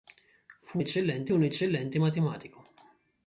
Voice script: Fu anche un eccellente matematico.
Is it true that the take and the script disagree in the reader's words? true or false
true